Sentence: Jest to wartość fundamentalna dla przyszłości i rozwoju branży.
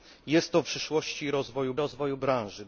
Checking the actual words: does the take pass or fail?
fail